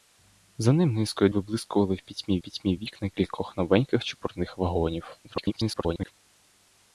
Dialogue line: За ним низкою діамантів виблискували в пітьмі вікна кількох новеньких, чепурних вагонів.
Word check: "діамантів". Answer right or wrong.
wrong